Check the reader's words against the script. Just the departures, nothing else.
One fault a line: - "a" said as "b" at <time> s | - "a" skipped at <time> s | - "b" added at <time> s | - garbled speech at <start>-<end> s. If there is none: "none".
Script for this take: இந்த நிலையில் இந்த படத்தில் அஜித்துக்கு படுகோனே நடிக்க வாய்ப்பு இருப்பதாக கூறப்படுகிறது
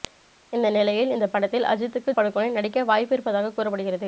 none